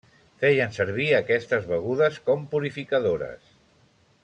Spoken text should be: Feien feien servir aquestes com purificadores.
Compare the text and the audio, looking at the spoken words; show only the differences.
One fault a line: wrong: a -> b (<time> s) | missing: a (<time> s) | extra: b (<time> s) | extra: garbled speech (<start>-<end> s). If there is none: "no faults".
missing: feien (0.7 s)
extra: begudes (1.7 s)